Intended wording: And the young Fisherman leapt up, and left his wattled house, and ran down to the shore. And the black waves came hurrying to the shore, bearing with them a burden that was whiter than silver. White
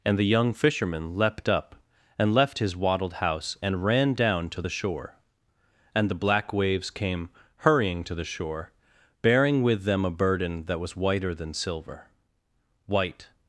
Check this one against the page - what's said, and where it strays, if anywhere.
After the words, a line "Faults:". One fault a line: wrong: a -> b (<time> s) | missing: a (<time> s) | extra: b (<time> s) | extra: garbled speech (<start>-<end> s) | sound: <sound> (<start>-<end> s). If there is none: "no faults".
And the young Fisherman leapt up, and left his wattled house, and ran down to the shore. And the black waves came hurrying to the shore, bearing with them a burden that was whiter than silver. White
Faults:
no faults